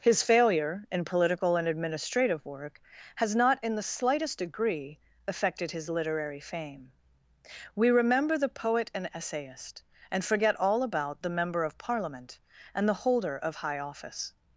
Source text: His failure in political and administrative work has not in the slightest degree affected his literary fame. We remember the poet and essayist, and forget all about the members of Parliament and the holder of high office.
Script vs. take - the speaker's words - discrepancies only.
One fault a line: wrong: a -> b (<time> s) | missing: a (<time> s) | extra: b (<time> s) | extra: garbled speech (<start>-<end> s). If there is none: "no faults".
wrong: members -> member (11.4 s)